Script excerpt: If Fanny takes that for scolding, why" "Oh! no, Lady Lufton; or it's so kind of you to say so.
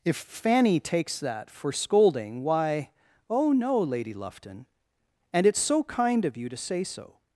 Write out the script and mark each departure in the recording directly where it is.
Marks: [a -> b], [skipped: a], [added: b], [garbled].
If Fanny takes that for scolding, why" "Oh! no, Lady Lufton; [or -> and] it's so kind of you to say so.